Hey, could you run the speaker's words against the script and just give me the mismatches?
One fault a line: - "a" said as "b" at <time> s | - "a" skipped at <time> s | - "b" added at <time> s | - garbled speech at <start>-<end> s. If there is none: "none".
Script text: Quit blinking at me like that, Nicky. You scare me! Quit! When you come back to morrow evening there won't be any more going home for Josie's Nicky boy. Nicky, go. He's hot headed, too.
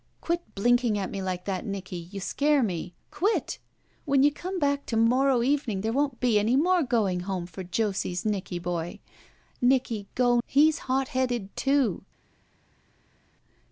none